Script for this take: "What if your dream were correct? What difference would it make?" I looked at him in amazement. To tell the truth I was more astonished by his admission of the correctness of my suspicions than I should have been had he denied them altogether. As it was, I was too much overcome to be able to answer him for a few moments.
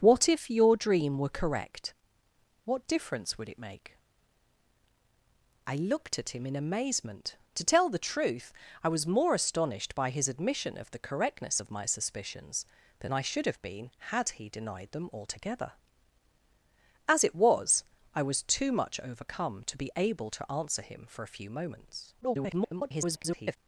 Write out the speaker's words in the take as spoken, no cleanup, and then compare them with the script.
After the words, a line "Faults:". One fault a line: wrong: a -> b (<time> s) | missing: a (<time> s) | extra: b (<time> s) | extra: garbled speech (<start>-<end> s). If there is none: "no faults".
"What if your dream were correct? What difference would it make?" I looked at him in amazement. To tell the truth I was more astonished by his admission of the correctness of my suspicions than I should have been had he denied them altogether. As it was, I was too much overcome to be able to answer him for a few moments. [garbled]
Faults:
extra: garbled speech (22.2-23.6 s)